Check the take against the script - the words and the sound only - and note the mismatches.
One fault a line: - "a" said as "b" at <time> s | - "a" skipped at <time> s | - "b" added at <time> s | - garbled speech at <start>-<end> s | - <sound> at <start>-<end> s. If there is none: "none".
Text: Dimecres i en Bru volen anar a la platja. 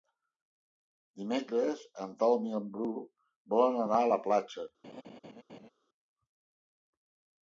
- "en Telm" added at 2.0 s
- laugh at 4.8-5.7 s